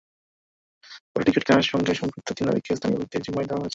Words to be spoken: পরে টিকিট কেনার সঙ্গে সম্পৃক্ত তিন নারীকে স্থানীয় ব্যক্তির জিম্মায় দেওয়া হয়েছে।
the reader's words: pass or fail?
pass